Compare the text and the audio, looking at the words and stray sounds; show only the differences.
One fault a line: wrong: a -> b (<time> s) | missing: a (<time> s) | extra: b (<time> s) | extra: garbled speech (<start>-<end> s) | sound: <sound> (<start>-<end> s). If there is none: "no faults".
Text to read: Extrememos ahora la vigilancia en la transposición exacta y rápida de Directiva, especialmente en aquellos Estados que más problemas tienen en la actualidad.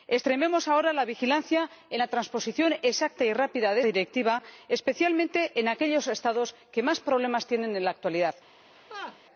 sound: laugh (8.7-9.2 s)